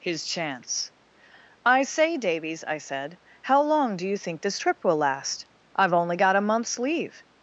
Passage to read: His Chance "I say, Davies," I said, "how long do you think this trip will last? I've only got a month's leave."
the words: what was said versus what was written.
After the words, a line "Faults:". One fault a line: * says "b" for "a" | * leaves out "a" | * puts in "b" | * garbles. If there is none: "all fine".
His Chance "I say, Davies," I said, "how long do you think this trip will last? I've only got a month's leave."
Faults:
all fine